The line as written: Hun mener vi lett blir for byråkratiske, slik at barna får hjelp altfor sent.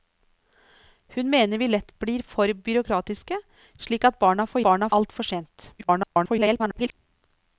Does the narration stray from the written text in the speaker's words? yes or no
yes